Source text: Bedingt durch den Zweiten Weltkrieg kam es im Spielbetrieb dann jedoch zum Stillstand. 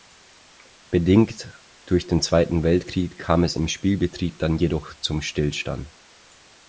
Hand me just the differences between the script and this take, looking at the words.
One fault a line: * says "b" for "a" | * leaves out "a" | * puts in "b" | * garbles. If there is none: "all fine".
all fine